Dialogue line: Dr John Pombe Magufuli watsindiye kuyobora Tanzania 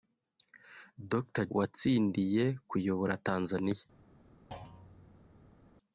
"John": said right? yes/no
no